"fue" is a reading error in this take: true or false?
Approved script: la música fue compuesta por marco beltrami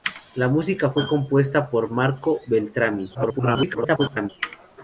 false